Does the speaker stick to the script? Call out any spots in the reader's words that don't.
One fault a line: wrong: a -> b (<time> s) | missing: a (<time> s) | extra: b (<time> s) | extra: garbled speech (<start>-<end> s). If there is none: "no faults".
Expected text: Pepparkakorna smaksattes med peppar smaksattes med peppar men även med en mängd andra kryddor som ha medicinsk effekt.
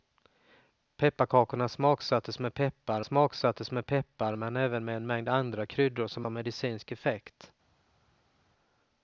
no faults